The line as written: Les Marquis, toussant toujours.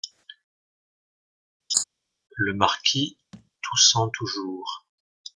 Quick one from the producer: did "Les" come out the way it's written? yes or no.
no